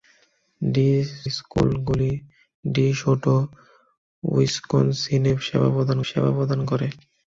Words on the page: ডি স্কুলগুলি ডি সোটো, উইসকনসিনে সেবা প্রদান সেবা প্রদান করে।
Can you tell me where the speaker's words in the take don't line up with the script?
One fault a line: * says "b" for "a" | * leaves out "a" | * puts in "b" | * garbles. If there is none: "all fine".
all fine